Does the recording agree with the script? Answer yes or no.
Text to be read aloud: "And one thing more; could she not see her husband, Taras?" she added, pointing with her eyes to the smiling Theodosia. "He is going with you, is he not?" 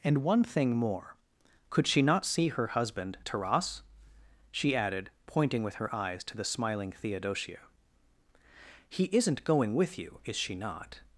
no